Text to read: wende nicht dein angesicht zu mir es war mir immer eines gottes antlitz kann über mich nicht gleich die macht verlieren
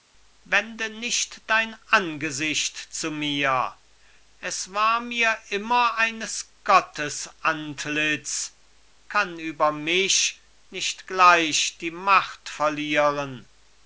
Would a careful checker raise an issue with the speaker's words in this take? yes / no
no